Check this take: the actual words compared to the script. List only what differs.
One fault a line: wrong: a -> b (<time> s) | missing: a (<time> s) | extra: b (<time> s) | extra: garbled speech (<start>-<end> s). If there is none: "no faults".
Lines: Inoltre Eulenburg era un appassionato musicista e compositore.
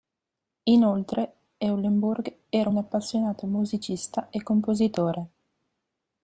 no faults